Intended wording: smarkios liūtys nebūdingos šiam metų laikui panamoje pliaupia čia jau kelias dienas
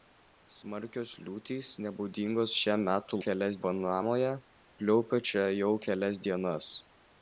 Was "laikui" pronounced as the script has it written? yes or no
no